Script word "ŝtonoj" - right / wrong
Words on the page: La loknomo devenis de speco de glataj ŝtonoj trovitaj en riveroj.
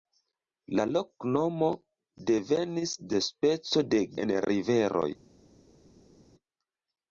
wrong